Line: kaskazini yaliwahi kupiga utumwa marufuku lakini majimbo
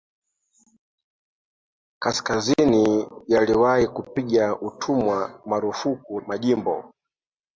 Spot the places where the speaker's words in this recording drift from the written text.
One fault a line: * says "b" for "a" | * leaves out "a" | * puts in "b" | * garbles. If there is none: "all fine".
* leaves out "lakini"